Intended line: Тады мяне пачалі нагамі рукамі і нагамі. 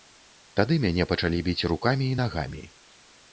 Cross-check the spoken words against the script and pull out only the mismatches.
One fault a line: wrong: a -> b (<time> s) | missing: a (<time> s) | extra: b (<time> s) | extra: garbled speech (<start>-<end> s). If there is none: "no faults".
wrong: нагамі -> біць (1.5 s)